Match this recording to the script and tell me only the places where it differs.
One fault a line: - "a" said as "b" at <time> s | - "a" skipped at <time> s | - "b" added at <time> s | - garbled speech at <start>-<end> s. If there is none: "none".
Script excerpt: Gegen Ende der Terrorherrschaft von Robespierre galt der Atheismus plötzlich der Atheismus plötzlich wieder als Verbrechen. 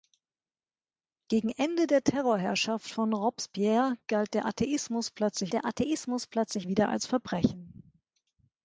none